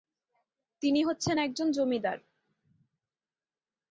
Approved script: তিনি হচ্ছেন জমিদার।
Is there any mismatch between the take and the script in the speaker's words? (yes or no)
yes